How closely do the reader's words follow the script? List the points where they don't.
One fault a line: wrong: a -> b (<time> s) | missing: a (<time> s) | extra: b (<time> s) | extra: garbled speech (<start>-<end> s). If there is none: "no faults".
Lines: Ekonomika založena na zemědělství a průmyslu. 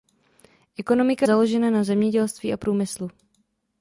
no faults